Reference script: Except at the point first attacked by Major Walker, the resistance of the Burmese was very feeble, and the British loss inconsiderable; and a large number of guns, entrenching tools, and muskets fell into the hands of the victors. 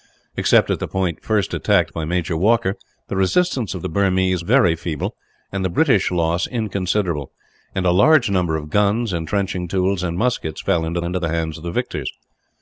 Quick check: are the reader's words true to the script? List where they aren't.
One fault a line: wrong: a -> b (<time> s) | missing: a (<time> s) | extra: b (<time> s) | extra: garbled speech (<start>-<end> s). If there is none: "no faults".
missing: was (4.4 s)
extra: into (11.0 s)